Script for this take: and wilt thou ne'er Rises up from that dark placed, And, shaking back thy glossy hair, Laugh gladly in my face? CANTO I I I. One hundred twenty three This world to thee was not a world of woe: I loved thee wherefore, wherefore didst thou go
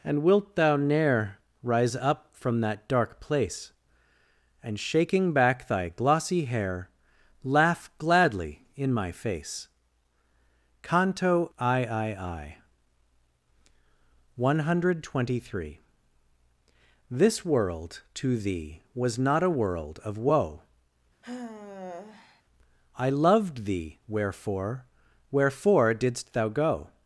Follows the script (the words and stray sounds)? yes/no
no